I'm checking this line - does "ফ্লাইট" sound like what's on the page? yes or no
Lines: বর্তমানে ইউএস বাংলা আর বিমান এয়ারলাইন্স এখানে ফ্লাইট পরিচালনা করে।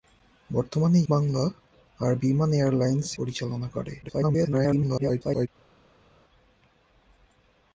no